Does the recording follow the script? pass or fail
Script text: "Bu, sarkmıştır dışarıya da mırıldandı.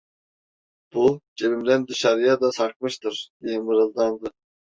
fail